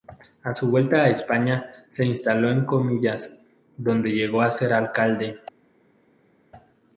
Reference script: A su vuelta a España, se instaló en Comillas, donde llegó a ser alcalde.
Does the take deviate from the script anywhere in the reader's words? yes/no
no